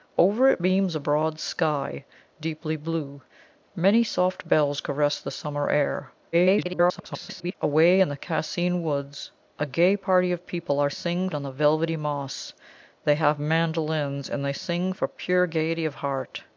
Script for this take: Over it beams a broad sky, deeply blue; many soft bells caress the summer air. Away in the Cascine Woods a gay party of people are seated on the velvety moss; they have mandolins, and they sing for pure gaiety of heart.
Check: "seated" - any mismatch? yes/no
yes